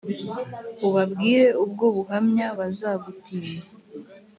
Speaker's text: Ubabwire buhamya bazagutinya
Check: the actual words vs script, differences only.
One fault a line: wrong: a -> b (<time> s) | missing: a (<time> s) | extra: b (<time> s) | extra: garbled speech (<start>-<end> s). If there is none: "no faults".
extra: ubwo (1.6 s)